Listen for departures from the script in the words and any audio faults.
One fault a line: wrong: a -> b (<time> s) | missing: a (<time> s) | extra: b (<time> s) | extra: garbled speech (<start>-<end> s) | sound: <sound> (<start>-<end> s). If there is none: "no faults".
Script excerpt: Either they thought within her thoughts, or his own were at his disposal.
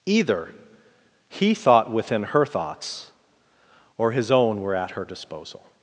wrong: they -> he (1.3 s)
wrong: his -> her (4.9 s)